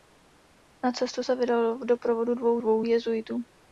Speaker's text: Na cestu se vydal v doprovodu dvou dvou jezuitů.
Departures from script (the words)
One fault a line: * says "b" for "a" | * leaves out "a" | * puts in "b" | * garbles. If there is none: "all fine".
all fine